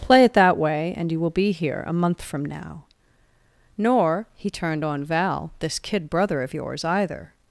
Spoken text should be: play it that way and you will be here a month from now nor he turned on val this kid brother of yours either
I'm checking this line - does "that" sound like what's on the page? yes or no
yes